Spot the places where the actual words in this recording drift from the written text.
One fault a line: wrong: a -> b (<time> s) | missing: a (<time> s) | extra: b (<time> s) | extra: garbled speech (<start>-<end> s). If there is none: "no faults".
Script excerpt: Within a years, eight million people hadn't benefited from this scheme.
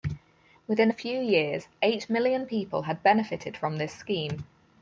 extra: few (0.9 s)
wrong: hadn't -> had (2.8 s)